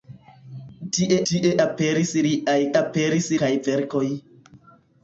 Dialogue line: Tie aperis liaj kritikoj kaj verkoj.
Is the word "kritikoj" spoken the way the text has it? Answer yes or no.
no